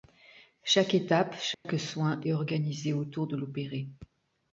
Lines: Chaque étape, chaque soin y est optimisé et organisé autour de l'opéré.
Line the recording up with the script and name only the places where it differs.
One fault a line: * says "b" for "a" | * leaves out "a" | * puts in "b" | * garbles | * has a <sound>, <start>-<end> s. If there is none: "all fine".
* has a dropout, 1.5-1.7 s
* leaves out "y est optimisé"